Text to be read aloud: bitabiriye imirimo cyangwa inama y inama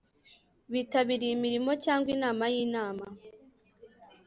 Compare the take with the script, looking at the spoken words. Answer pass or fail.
pass